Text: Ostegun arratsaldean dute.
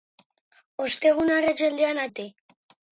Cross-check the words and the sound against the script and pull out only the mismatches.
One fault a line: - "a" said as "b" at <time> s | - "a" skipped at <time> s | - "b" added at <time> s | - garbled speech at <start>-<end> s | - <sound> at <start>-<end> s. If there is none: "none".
none